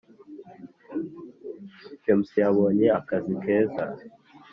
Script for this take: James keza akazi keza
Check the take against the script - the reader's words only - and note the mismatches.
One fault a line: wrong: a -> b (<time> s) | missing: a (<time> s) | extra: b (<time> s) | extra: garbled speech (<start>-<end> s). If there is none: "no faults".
wrong: keza -> yabonye (2.4 s)